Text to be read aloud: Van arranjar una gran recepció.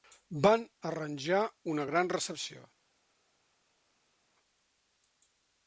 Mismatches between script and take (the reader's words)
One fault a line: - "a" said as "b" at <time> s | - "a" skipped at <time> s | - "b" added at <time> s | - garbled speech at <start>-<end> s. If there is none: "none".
none